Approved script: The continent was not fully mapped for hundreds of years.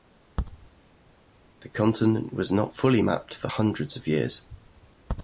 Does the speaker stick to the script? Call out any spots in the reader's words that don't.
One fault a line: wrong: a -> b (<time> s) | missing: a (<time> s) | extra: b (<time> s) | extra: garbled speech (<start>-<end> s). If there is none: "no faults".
no faults